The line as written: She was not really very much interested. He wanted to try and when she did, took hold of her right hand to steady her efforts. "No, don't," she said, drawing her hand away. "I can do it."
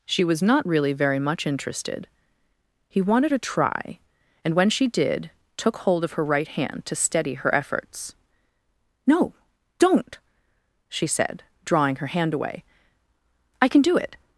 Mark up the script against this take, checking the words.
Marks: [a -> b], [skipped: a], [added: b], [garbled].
She was not really very much interested. He wanted to try and when she did, took hold of her right hand to steady her efforts. "No, don't," she said, drawing her hand away. "I can do it."